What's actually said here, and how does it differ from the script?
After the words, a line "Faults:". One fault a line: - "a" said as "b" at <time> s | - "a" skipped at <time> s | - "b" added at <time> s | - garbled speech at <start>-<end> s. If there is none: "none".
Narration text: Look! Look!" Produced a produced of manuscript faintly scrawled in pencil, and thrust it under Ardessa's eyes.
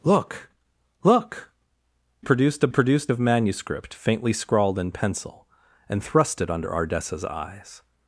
Look! Look!" Produced a produced of manuscript faintly scrawled in pencil, and thrust it under Ardessa's eyes.
Faults:
none